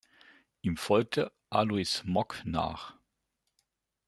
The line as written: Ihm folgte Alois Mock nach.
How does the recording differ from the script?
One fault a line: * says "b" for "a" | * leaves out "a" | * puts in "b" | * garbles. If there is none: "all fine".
all fine